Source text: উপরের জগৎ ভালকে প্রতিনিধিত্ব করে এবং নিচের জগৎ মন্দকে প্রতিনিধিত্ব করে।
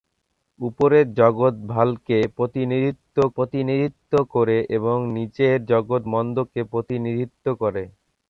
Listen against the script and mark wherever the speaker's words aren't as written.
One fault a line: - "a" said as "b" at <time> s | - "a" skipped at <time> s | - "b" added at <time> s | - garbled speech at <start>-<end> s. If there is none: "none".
- "প্রতিনিধিত্ব" added at 3.4 s